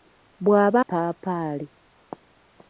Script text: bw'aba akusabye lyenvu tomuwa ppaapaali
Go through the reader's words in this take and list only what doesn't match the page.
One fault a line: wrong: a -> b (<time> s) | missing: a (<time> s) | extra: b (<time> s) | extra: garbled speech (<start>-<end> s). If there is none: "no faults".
missing: akusabye lyenvu tomuwa (0.8 s)